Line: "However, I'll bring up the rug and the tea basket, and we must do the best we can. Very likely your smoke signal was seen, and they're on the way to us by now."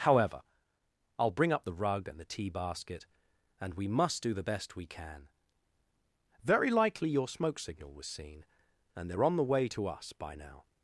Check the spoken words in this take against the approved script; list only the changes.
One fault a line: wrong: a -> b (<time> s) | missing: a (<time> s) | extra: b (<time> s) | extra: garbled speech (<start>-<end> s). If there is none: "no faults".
no faults